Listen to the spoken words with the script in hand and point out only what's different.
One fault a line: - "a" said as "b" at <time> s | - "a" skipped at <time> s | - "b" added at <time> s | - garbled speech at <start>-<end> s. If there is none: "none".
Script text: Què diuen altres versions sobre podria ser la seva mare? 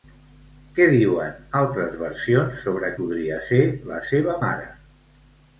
none